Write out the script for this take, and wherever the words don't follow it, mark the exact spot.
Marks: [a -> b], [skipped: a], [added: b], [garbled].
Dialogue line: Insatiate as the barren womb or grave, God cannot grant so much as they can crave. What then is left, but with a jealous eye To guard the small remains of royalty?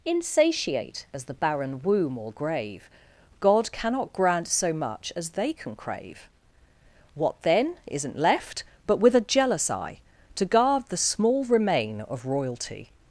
Insatiate as the barren womb or grave, God cannot grant so much as they can crave. What then [is -> isn't] left, but with a jealous eye To guard the small [remains -> remain] of royalty?